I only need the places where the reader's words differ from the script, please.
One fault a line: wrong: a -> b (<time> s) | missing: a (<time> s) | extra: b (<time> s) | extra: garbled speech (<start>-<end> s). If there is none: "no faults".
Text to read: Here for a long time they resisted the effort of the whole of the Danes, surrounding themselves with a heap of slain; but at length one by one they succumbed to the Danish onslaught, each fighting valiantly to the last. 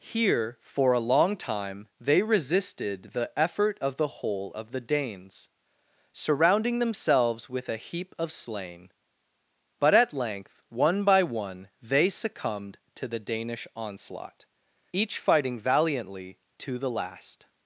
no faults